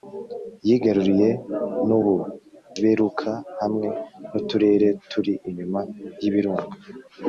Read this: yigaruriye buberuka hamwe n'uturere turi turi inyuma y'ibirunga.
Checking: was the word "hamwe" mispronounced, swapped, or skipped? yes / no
no